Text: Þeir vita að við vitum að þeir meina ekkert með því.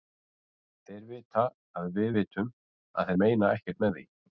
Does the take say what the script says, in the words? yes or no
yes